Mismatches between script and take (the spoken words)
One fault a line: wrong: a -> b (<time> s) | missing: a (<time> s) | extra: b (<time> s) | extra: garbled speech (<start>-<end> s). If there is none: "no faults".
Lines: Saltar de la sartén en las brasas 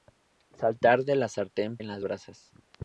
no faults